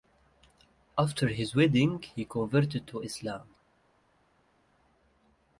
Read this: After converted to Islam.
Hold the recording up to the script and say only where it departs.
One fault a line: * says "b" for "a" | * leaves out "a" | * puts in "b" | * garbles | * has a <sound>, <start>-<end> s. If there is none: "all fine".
* puts in "his wedding he"